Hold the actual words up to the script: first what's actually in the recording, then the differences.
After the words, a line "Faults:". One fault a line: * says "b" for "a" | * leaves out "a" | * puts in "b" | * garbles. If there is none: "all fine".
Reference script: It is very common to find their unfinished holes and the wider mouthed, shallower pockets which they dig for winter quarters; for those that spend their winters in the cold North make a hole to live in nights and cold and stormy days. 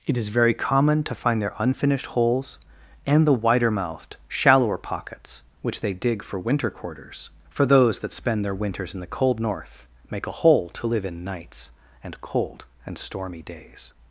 It is very common to find their unfinished holes and the wider mouthed, shallower pockets which they dig for winter quarters; for those that spend their winters in the cold North make a hole to live in nights and cold and stormy days.
Faults:
all fine